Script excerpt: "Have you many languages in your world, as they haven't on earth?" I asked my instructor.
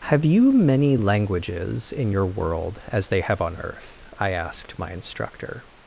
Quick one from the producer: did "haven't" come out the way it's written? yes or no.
no